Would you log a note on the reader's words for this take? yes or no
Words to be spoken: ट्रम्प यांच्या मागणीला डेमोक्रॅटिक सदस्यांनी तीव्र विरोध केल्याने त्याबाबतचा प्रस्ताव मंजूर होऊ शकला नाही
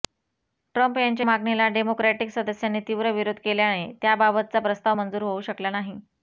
no